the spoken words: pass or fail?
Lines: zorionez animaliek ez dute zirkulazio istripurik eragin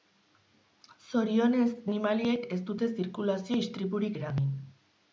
pass